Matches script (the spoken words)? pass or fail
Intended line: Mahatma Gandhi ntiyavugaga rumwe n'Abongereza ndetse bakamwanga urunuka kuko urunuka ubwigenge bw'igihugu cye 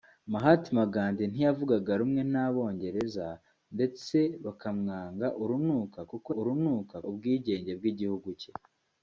pass